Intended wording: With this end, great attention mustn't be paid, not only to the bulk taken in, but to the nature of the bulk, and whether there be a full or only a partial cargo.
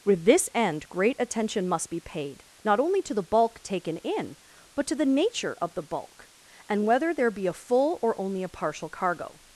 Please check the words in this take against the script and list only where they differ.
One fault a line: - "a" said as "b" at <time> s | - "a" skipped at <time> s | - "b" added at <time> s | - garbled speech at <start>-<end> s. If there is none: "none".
- "mustn't" said as "must" at 1.7 s